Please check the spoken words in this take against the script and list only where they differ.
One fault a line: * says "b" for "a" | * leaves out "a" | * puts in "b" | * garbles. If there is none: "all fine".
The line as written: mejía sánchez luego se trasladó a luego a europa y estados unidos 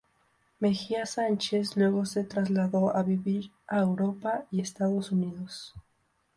* says "vivir" for "luego"